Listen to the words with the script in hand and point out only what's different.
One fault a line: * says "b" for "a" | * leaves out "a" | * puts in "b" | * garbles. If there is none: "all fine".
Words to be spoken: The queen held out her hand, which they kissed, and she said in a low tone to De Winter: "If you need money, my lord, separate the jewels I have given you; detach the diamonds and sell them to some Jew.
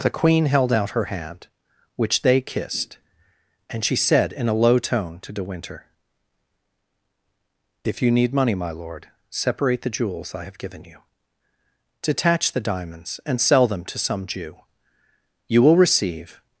* puts in "You will receive"